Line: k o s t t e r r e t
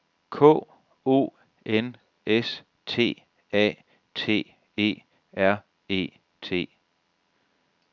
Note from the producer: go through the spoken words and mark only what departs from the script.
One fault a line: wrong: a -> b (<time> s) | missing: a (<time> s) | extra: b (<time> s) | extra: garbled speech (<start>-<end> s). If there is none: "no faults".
extra: n (1.6 s)
extra: a (3.5 s)
missing: r (5.6 s)